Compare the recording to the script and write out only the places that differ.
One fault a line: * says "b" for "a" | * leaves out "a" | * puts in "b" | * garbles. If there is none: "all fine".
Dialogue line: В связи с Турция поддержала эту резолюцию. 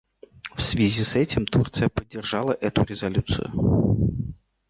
* puts in "этим"